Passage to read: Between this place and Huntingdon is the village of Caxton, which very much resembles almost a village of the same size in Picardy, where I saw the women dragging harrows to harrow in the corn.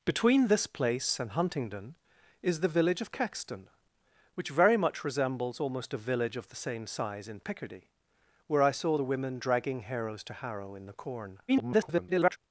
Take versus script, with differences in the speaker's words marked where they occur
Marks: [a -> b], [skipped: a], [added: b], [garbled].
Between this place and Huntingdon is the village of Caxton, which very much resembles almost a village of the same size in Picardy, where I saw the women dragging harrows to harrow in the corn. [garbled]